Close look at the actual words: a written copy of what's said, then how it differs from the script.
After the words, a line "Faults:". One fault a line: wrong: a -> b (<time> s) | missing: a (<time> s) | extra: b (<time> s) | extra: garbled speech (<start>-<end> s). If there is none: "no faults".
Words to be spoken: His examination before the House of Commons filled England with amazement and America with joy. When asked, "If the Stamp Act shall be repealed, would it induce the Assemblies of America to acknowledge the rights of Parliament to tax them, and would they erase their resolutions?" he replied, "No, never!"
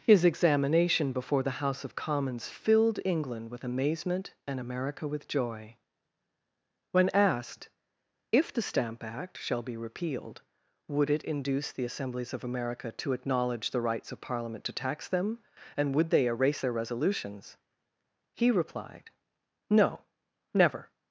His examination before the House of Commons filled England with amazement and America with joy. When asked, "If the Stamp Act shall be repealed, would it induce the Assemblies of America to acknowledge the rights of Parliament to tax them, and would they erase their resolutions?" he replied, "No, never!"
Faults:
no faults